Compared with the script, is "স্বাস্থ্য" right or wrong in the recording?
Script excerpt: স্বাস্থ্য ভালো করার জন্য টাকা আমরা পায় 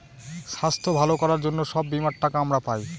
right